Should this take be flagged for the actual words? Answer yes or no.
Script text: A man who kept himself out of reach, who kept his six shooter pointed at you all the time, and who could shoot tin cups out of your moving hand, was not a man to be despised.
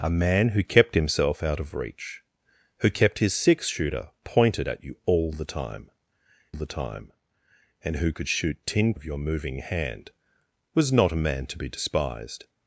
yes